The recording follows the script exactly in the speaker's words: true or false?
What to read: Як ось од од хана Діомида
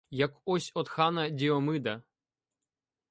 false